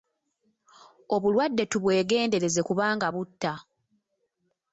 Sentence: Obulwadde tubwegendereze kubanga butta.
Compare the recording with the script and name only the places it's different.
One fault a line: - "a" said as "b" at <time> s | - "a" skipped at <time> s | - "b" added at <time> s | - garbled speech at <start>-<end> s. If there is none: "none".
none